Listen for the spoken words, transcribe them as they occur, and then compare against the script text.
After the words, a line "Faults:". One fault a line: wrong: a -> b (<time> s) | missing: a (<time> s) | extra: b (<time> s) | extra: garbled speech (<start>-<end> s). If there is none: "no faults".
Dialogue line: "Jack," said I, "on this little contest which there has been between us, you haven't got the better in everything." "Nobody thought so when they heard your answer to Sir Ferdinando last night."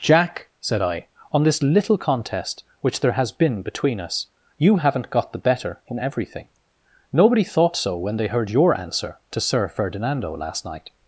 "Jack," said I, "on this little contest which there has been between us, you haven't got the better in everything." "Nobody thought so when they heard your answer to Sir Ferdinando last night."
Faults:
no faults